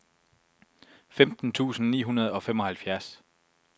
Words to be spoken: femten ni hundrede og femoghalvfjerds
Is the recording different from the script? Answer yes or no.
yes